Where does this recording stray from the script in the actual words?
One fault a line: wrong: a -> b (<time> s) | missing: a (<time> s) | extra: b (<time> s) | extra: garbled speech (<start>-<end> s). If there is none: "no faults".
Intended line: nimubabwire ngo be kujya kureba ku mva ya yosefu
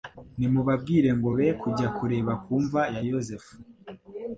no faults